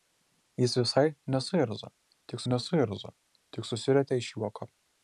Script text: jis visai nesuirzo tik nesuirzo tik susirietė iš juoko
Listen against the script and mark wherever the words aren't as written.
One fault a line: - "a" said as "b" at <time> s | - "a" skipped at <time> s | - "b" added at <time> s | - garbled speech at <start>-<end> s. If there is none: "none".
none